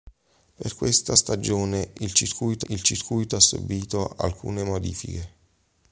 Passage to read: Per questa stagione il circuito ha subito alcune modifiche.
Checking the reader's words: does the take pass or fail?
fail